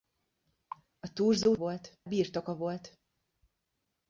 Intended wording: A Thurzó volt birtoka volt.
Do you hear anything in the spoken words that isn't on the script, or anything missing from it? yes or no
no